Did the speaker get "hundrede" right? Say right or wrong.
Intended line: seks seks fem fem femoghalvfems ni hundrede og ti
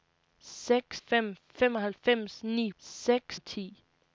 wrong